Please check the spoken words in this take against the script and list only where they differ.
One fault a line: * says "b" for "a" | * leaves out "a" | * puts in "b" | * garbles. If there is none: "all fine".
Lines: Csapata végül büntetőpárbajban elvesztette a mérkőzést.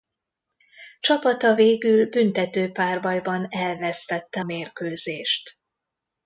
* leaves out "a"